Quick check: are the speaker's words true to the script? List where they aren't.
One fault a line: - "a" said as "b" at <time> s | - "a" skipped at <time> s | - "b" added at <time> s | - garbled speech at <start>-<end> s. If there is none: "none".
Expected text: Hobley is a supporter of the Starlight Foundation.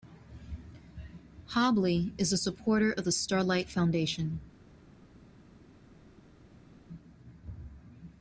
none